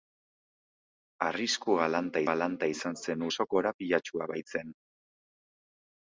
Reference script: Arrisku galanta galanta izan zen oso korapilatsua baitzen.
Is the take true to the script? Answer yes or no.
yes